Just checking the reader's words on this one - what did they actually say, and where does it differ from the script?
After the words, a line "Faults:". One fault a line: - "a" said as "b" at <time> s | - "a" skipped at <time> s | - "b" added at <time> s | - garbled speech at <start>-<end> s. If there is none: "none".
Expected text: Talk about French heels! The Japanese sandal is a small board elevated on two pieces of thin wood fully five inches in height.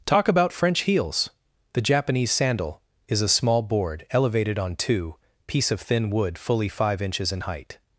Talk about French heels! The Japanese sandal is a small board elevated on two piece of thin wood fully five inches in height.
Faults:
- "pieces" said as "piece" at 5.5 s